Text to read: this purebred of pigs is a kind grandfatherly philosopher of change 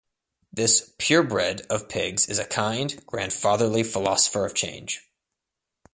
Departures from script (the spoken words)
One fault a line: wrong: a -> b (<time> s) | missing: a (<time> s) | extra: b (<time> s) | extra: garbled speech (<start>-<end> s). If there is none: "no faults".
no faults